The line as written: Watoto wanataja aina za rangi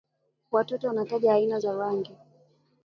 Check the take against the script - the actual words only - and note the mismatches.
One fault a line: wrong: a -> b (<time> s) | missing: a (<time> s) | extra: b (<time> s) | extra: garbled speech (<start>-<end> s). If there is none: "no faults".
no faults